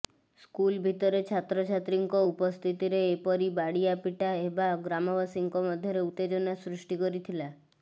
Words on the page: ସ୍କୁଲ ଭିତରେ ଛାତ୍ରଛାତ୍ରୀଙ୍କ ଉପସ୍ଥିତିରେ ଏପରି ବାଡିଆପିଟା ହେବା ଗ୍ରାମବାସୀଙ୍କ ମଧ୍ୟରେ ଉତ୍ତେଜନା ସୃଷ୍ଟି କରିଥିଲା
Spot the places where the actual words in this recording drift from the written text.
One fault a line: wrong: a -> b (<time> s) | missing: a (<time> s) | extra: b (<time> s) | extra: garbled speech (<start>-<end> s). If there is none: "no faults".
no faults